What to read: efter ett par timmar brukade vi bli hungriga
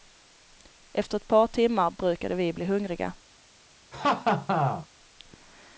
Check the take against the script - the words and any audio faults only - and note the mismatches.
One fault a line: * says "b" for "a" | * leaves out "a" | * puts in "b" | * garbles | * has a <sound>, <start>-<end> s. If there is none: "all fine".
* has a laugh, 3.9-4.9 s